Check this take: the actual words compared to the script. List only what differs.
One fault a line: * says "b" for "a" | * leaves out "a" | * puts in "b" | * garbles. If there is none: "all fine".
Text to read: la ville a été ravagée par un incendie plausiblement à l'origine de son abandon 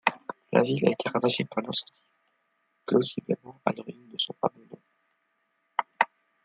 all fine